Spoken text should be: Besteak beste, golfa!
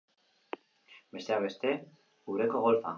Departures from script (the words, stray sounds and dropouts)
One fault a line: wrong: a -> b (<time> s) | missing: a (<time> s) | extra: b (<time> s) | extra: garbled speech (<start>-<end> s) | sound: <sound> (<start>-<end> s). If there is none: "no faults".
extra: ureko (2.4 s)